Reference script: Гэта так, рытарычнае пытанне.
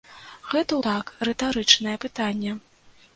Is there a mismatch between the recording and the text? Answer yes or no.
no